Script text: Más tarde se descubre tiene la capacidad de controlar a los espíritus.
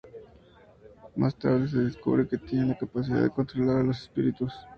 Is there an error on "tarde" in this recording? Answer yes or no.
no